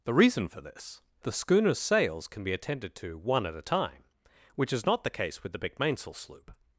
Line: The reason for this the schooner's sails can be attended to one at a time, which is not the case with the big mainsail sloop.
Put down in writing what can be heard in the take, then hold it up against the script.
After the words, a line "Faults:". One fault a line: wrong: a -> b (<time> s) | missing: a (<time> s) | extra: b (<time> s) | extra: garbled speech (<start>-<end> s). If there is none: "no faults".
The reason for this the schooner's sails can be attended to one at a time, which is not the case with the big mainsail sloop.
Faults:
no faults